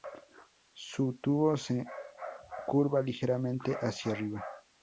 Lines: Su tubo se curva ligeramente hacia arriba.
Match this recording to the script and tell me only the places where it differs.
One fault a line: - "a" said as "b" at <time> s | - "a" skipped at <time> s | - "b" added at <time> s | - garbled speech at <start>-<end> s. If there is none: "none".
none